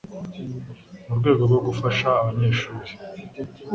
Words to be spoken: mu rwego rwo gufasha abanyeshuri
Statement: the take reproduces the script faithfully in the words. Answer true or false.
true